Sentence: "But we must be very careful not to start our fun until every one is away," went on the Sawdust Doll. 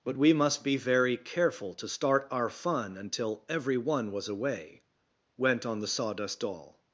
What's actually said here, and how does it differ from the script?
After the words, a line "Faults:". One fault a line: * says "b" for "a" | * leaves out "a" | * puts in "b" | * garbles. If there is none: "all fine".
"But we must be very careful to start our fun until every one was away," went on the Sawdust Doll.
Faults:
* leaves out "not"
* says "was" for "is"